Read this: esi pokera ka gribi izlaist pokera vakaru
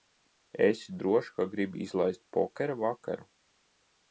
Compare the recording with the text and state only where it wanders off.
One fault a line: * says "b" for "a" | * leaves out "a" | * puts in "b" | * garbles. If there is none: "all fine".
* says "drošs" for "pokera"